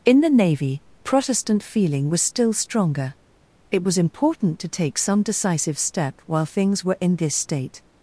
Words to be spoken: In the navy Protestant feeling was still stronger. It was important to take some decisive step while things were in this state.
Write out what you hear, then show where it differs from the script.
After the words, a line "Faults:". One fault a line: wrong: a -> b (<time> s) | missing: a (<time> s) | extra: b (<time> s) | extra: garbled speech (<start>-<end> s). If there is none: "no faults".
In the navy Protestant feeling was still stronger. It was important to take some decisive step while things were in this state.
Faults:
no faults